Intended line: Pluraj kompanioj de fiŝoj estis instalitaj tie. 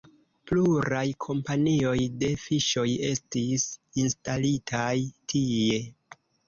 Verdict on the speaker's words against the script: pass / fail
pass